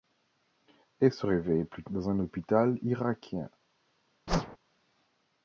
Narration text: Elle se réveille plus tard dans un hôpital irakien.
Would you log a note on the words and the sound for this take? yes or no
yes